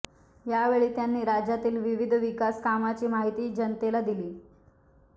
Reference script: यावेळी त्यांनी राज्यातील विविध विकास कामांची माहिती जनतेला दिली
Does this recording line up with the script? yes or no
yes